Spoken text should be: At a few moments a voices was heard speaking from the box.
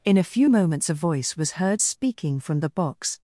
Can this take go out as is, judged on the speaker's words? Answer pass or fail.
fail